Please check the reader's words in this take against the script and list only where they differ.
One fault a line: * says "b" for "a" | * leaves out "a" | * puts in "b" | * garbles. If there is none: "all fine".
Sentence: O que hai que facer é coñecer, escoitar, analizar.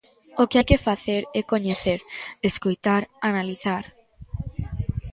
all fine